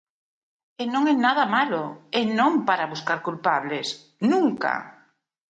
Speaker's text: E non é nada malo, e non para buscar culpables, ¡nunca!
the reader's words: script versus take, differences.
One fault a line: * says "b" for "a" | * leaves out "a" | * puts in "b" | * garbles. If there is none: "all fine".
all fine